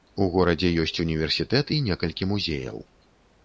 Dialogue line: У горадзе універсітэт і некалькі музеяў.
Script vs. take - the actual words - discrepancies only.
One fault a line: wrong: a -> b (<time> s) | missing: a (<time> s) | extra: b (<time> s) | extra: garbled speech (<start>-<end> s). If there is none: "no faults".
extra: ёсць (0.8 s)